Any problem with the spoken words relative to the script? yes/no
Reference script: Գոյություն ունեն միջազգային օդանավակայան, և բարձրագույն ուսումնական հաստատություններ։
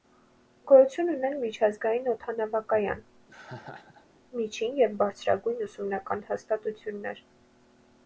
yes